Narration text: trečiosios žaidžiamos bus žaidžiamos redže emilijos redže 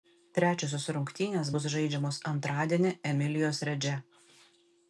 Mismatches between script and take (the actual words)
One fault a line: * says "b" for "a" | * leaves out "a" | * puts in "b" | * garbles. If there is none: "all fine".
* says "rungtynės" for "žaidžiamos"
* says "antradienį" for "redže"